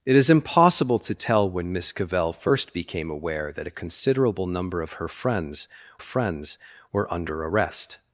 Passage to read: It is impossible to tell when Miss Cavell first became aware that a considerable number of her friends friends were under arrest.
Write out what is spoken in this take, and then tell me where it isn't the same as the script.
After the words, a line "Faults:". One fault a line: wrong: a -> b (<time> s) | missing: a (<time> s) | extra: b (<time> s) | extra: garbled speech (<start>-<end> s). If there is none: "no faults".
It is impossible to tell when Miss Cavell first became aware that a considerable number of her friends friends were under arrest.
Faults:
no faults